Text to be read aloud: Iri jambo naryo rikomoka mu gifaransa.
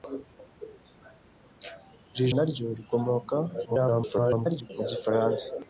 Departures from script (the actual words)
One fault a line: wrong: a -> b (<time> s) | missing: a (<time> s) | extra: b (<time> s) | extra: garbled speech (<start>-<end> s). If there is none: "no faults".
missing: jambo (2.2 s)
extra: garbled speech (3.6-4.7 s)